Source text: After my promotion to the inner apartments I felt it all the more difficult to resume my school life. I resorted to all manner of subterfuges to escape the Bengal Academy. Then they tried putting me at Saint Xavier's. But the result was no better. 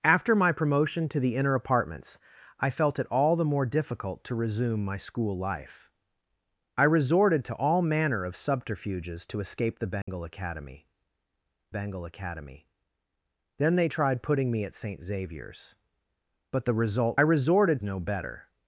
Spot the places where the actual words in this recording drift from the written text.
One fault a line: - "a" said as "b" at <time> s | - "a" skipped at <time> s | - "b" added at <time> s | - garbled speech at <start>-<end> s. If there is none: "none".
- "Bengal Academy" added at 11.7 s
- "was" said as "resorted" at 17.2 s